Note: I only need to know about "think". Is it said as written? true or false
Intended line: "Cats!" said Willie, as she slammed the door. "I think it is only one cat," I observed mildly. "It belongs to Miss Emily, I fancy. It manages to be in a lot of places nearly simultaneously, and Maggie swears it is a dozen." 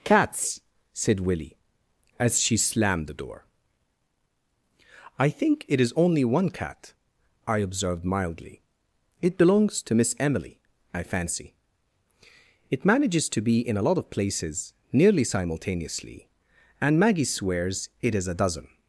true